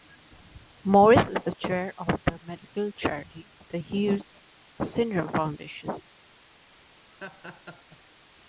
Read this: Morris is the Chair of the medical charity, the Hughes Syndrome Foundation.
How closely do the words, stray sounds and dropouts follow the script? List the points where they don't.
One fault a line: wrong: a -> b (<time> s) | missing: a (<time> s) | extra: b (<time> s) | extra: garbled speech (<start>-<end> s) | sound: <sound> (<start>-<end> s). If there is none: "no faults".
sound: laugh (7.1-8.0 s)